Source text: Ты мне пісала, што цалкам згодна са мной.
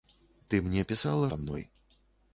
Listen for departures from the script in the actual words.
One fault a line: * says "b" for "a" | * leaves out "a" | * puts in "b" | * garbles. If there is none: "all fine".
* leaves out "што цалкам згодна"